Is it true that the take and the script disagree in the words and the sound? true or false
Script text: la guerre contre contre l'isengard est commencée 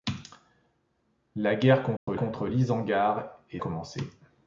true